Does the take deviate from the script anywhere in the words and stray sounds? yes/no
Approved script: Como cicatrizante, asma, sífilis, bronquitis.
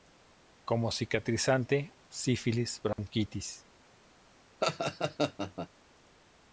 yes